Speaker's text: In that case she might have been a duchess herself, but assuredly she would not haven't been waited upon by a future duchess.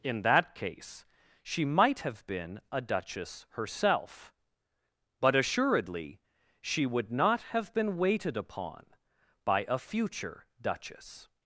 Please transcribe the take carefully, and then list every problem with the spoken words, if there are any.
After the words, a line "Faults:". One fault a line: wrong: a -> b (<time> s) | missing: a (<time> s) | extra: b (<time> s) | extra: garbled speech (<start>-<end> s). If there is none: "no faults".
In that case she might have been a duchess herself, but assuredly she would not have been waited upon by a future duchess.
Faults:
wrong: haven't -> have (7.5 s)